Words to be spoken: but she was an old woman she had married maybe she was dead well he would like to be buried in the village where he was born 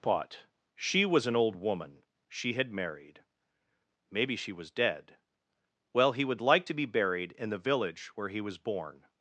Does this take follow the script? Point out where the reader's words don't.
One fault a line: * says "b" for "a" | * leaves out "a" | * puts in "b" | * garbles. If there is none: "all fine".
all fine